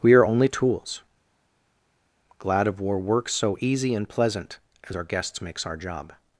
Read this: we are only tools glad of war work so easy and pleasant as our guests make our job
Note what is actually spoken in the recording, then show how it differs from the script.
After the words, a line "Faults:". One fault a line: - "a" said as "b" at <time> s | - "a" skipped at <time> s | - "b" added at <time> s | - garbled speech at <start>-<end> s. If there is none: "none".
we are only tools glad of war work so easy and pleasant as our guests makes our job
Faults:
- "make" said as "makes" at 5.4 s